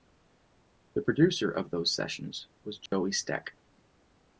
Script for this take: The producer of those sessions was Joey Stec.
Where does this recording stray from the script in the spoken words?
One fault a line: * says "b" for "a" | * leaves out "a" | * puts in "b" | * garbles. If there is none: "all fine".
all fine